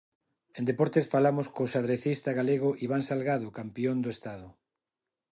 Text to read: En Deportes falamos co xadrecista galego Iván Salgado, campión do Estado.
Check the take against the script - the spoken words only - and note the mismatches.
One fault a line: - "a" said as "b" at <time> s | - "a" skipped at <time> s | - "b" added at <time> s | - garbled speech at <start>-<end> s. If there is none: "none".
none